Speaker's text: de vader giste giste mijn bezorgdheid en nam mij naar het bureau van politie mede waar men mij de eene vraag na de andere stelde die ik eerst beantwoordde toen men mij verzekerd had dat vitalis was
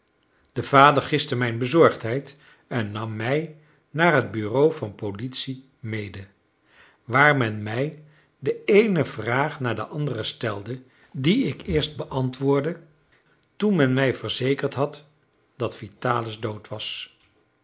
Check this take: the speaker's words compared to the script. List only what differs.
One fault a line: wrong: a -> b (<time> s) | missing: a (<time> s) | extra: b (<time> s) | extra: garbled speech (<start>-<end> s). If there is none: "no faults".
missing: giste (1.4 s)
extra: dood (16.4 s)